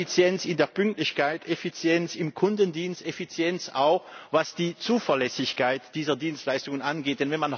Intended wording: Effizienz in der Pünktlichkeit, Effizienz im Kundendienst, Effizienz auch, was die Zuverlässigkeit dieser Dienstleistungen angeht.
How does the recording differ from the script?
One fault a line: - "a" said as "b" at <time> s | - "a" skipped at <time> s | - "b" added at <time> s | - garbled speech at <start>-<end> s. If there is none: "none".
none